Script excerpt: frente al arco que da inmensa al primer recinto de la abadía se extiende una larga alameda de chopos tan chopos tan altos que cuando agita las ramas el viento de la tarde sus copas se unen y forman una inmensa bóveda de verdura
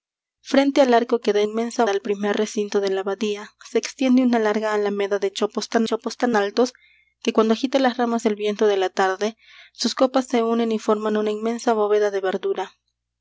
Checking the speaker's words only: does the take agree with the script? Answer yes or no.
yes